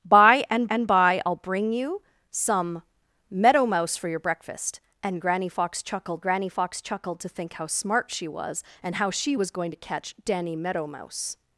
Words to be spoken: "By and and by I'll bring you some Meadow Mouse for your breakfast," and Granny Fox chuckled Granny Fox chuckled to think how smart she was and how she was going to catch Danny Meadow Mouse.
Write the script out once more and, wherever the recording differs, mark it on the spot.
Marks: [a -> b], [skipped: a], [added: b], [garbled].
"By and and by I'll bring you some Meadow Mouse for your breakfast," and Granny Fox chuckled Granny Fox chuckled to think how smart she was and how she was going to catch Danny Meadow Mouse.